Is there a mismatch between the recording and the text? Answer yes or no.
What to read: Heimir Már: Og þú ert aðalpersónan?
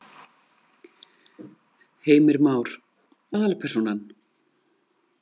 yes